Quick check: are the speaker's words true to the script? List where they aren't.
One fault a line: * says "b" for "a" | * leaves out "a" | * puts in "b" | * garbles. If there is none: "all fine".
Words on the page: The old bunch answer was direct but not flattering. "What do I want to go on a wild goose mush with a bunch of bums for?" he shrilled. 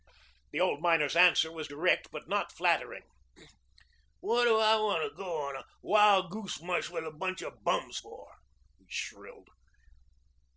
* says "miner's" for "bunch"